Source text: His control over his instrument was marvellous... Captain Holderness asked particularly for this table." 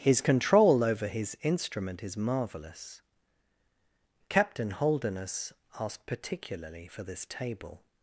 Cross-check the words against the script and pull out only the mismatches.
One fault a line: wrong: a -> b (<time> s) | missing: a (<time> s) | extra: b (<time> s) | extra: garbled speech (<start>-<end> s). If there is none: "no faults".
wrong: was -> is (2.0 s)